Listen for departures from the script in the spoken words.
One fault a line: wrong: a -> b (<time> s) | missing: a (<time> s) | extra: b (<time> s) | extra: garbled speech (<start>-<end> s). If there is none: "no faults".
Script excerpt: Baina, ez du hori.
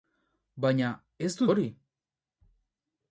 no faults